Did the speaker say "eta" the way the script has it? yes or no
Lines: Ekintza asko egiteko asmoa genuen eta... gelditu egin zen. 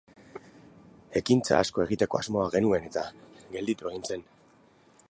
yes